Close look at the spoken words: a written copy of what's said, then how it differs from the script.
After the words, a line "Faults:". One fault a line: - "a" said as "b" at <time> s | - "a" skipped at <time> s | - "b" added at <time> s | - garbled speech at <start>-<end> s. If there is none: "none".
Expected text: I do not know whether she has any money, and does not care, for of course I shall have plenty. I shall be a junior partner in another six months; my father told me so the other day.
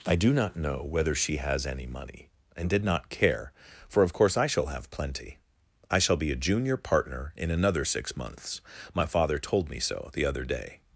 I do not know whether she has any money, and did not care, for of course I shall have plenty. I shall be a junior partner in another six months; my father told me so the other day.
Faults:
- "does" said as "did" at 2.7 s